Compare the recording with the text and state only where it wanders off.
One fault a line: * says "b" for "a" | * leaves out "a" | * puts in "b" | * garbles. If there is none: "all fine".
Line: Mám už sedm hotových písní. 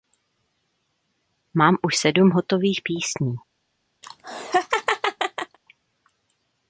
all fine